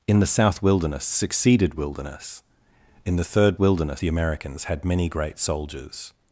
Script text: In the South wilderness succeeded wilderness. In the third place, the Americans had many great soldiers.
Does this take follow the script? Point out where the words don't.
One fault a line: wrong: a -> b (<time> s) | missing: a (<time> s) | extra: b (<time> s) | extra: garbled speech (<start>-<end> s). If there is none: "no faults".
wrong: place -> wilderness (3.6 s)